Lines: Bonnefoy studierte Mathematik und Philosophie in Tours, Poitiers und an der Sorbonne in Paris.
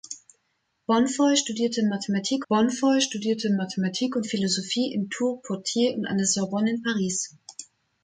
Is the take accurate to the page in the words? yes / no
no